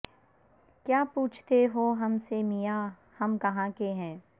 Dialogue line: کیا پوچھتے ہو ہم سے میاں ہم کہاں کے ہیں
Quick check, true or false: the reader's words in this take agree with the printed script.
true